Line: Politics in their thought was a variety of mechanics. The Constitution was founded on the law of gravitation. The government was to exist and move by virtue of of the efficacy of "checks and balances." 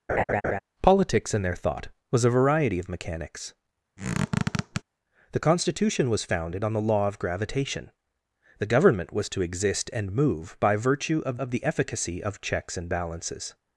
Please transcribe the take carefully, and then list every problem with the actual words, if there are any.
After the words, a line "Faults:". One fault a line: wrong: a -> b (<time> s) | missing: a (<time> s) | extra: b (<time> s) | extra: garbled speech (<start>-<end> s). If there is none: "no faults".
Politics in their thought was a variety of mechanics. The Constitution was founded on the law of gravitation. The government was to exist and move by virtue of of the efficacy of "checks and balances."
Faults:
no faults